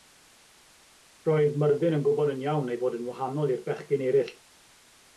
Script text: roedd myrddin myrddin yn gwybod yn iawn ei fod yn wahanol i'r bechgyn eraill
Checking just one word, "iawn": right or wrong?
right